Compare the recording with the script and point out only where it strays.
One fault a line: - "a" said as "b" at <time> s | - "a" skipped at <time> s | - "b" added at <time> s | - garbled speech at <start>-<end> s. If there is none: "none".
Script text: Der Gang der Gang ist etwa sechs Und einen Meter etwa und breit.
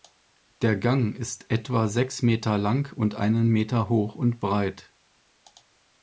- "der Gang" skipped at 1.1 s
- "Meter lang" added at 2.2 s
- "etwa" said as "hoch" at 3.9 s